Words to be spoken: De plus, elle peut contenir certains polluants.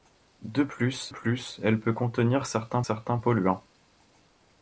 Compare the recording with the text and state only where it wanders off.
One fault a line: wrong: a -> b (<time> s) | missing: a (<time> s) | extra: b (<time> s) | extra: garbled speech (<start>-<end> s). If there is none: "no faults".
extra: plus (1.1 s)
extra: certains (2.8 s)